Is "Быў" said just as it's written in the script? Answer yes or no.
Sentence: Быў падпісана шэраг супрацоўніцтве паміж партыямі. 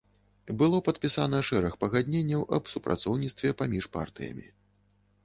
no